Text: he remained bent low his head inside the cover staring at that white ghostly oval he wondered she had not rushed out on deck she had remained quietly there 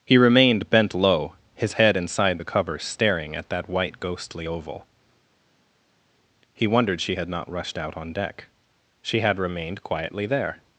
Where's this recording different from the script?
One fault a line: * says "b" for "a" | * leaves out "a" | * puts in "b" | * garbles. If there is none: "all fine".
all fine